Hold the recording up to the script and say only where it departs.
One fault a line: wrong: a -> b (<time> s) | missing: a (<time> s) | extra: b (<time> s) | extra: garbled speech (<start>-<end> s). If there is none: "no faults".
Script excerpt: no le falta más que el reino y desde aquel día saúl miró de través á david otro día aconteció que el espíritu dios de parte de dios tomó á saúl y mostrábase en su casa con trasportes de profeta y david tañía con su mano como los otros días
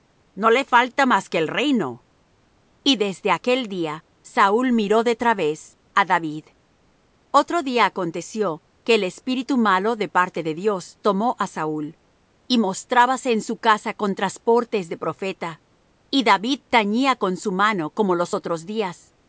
wrong: dios -> malo (9.6 s)